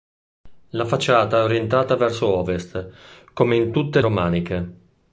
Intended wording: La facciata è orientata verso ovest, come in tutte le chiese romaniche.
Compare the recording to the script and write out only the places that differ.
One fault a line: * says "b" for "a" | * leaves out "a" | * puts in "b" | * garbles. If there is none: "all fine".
* leaves out "le chiese"